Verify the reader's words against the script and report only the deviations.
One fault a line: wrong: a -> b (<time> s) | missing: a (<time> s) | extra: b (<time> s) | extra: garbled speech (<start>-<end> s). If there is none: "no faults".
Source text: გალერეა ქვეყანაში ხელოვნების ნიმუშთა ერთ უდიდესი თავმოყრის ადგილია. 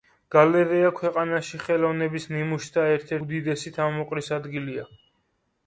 no faults